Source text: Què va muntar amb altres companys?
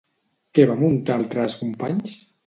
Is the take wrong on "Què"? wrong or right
right